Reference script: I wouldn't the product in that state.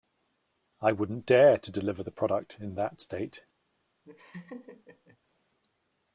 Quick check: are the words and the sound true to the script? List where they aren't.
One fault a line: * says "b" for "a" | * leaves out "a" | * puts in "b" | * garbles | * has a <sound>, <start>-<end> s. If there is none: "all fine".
* puts in "dare to deliver"
* has a laugh, 4.0-5.2 s